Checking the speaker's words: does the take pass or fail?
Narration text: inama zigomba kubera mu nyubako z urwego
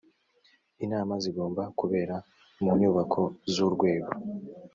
pass